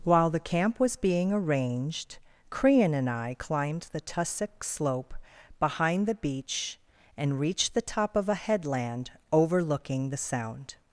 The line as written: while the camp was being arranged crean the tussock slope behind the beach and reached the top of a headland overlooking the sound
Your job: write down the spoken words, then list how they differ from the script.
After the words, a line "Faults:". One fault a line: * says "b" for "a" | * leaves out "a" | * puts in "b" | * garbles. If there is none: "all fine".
while the camp was being arranged crean and i climbed the tussock slope behind the beach and reached the top of a headland overlooking the sound
Faults:
* puts in "and i climbed"